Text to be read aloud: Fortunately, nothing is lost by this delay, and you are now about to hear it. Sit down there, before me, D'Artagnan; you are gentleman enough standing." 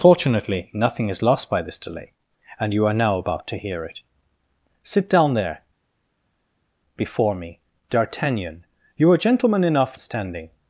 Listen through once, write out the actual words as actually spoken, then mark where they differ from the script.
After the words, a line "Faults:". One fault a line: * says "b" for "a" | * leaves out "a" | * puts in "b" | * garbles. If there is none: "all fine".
Fortunately, nothing is lost by this delay, and you are now about to hear it. Sit down there, before me, D'Artagnan; you are gentleman enough standing."
Faults:
all fine